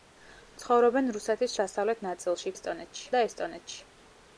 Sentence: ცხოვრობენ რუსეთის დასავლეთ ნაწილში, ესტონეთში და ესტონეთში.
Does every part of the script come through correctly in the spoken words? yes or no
yes